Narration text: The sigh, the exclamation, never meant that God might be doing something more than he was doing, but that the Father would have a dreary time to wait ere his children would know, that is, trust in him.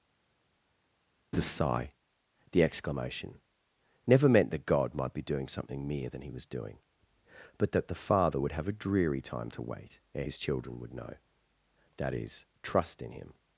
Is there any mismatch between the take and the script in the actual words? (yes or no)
yes